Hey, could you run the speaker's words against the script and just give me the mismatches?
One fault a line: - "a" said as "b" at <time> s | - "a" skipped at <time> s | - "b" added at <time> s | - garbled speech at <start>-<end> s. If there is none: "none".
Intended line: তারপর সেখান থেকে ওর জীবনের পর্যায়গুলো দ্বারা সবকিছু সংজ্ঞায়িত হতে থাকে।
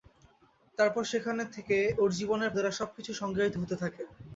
- "পর্যায়গুলো" skipped at 2.5 s